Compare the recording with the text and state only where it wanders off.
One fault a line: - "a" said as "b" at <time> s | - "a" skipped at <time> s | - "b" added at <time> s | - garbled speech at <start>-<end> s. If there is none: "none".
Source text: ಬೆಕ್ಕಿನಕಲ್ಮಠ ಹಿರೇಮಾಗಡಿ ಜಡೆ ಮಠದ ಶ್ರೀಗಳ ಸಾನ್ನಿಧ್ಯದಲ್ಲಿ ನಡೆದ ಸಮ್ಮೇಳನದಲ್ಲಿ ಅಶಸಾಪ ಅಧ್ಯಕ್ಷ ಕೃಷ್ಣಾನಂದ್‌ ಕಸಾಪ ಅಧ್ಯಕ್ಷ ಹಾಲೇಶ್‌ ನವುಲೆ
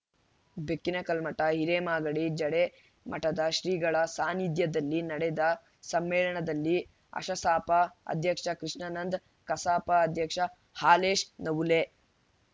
none